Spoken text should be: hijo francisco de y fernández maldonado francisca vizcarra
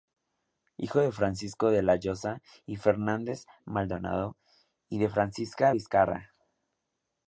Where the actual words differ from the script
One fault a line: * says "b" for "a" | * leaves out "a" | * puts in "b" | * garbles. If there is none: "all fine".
* puts in "de"
* puts in "la llosa"
* puts in "y de"